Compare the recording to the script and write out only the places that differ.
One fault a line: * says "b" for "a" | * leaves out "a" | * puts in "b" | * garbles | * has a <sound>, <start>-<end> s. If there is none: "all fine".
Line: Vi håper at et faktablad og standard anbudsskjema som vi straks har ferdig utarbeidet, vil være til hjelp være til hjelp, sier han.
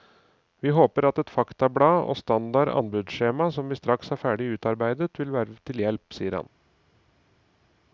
* leaves out "være til hjelp"